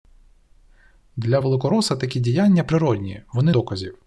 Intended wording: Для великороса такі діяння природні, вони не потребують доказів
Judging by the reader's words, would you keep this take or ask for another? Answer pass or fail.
fail